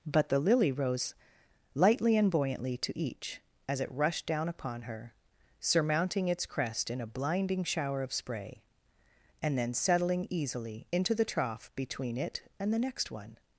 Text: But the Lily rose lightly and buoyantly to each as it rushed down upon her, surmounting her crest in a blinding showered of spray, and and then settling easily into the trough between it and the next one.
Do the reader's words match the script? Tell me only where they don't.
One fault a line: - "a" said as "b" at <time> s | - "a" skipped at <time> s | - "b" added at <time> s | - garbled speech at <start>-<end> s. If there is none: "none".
- "her" said as "its" at 6.3 s
- "showered" said as "shower" at 7.6 s
- "and" skipped at 9.6 s